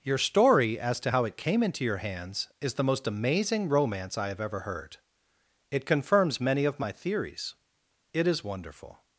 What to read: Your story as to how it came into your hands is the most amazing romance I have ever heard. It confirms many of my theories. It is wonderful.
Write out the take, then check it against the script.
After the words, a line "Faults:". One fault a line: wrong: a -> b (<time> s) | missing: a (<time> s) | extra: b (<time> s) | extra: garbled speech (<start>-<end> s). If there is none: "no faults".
Your story as to how it came into your hands is the most amazing romance I have ever heard. It confirms many of my theories. It is wonderful.
Faults:
no faults